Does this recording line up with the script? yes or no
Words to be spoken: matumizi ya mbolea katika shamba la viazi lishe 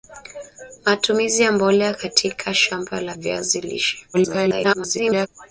no